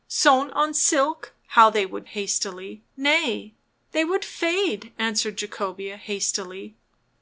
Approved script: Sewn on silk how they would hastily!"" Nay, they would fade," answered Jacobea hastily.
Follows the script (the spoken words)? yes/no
yes